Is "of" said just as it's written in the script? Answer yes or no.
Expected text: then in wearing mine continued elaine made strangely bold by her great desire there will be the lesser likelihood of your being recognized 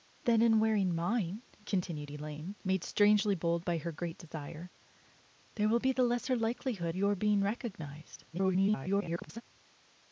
no